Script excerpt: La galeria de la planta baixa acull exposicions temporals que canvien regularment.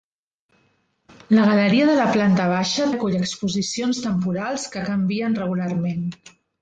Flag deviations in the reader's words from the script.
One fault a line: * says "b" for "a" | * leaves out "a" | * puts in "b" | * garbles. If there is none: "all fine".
all fine